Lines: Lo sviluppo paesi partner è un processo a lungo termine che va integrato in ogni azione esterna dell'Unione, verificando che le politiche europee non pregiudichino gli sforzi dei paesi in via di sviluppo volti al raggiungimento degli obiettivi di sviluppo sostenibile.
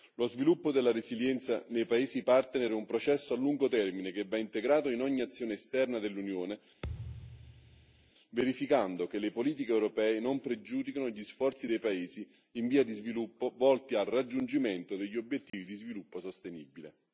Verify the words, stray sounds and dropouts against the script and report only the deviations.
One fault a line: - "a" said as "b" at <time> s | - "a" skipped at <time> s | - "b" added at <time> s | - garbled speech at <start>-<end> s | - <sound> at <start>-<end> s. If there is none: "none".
- "della resilienza nei" added at 0.7 s
- thud at 6.8-8.1 s
- dropout at 15.5-15.5 s